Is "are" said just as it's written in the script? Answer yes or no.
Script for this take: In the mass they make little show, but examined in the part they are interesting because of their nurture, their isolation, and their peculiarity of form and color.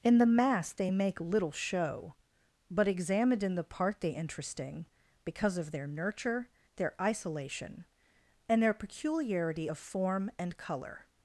no